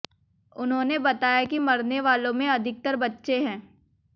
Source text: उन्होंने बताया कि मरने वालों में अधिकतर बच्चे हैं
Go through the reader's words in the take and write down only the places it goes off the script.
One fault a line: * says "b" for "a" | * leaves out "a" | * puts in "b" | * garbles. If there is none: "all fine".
all fine